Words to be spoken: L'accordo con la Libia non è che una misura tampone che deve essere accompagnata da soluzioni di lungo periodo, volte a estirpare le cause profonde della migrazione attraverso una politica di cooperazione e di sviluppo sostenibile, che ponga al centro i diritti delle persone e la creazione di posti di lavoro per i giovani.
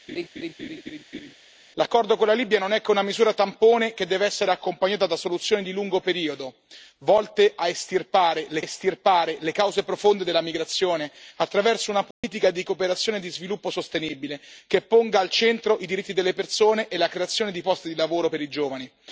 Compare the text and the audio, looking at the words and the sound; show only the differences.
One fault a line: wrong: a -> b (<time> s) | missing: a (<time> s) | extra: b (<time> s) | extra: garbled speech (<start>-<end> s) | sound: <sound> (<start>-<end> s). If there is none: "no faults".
sound: laugh (0.1-1.3 s)
extra: estirpare le (8.6 s)
sound: dropout (12.1-12.2 s)